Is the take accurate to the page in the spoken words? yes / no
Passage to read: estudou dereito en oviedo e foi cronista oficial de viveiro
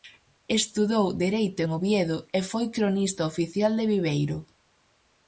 yes